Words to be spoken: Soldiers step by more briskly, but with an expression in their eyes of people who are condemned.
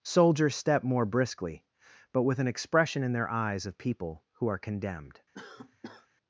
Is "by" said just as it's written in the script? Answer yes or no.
no